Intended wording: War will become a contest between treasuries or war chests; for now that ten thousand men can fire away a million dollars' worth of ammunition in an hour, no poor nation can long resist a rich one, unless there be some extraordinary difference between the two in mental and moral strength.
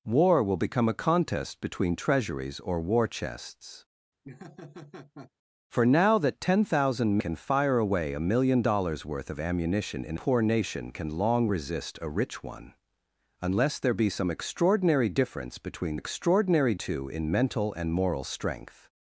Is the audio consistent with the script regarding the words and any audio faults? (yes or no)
no